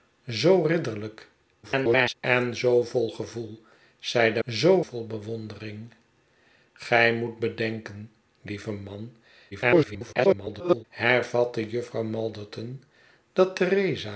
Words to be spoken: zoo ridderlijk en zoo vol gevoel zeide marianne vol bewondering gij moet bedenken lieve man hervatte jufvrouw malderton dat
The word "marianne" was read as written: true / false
false